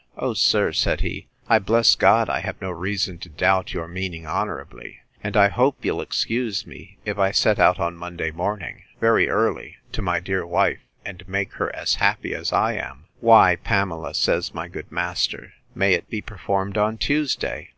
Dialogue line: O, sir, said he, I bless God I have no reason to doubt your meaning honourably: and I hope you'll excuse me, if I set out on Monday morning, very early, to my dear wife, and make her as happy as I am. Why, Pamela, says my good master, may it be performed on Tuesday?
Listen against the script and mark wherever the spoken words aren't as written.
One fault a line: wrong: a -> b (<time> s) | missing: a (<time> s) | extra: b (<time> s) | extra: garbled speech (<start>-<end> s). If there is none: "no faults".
no faults